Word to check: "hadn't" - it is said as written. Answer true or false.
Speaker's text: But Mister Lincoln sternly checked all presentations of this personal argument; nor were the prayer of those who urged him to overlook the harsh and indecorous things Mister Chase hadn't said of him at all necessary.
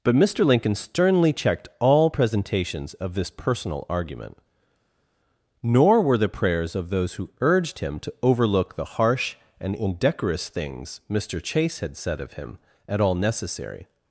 false